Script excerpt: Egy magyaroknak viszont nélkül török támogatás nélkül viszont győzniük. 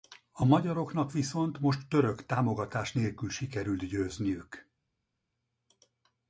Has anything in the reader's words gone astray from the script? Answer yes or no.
yes